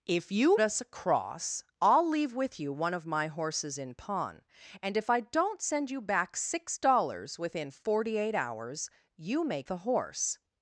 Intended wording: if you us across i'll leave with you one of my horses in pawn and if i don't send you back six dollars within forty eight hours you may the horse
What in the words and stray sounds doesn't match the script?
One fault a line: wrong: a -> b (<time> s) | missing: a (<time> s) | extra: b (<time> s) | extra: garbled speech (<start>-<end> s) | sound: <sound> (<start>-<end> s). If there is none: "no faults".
no faults